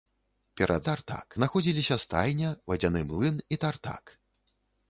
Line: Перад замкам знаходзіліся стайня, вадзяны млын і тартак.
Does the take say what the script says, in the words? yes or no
no